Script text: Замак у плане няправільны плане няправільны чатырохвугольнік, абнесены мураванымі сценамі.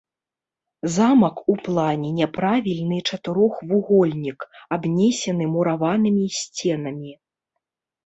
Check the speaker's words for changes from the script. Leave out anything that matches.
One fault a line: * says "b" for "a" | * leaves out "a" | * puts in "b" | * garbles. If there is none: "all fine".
* leaves out "плане няправільны"